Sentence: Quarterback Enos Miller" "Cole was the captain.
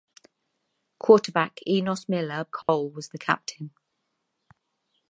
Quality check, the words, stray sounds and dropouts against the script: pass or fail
fail